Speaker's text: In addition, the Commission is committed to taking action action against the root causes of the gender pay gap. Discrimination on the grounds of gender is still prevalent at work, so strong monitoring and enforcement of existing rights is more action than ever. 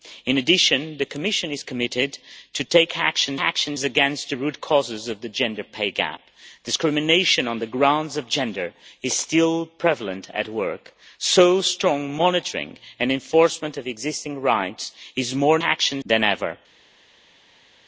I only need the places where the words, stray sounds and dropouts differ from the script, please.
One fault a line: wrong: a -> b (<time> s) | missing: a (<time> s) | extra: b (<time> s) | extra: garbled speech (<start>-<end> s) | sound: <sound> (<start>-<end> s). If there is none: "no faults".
no faults